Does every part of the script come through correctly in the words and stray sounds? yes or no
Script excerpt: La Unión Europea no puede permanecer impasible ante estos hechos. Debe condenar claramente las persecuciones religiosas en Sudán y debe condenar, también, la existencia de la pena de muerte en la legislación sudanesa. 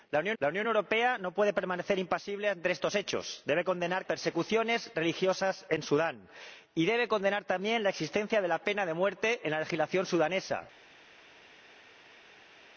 no